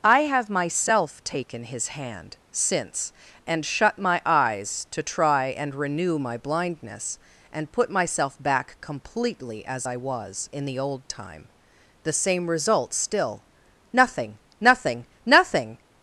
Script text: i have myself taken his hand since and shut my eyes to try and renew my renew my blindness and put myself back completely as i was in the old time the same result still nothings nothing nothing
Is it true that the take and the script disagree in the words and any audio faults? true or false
true